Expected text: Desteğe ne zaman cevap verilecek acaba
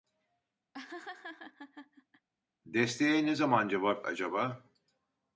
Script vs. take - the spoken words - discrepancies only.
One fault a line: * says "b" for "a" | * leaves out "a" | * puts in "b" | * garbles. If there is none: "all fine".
* leaves out "verilecek"